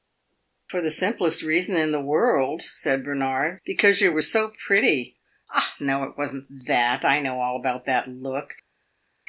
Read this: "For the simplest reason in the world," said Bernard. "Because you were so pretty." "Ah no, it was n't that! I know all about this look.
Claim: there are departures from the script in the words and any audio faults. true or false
true